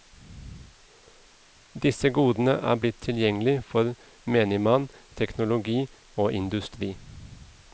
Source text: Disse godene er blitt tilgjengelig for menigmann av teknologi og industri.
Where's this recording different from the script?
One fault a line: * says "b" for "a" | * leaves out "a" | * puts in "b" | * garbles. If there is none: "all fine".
all fine